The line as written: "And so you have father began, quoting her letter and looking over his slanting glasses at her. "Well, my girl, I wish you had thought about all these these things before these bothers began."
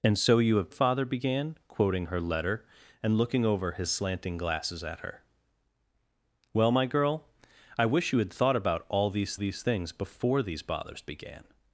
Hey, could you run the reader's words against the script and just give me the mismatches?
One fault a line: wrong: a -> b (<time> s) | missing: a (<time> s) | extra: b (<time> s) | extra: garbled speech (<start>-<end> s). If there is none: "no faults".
no faults